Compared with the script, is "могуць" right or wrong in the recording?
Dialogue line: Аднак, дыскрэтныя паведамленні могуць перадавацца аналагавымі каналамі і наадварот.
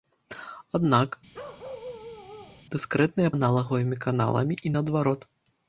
wrong